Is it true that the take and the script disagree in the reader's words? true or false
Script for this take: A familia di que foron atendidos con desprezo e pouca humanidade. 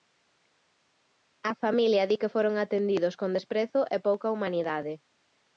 false